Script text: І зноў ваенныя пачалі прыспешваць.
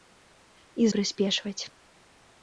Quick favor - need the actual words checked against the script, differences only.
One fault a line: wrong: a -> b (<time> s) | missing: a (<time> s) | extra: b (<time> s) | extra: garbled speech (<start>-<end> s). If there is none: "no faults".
missing: зноў ваенныя пачалі (0.9 s)